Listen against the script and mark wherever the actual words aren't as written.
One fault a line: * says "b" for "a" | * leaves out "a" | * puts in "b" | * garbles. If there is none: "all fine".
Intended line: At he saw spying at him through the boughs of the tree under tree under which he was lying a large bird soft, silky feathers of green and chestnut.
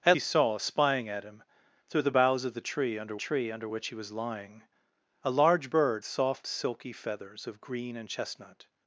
all fine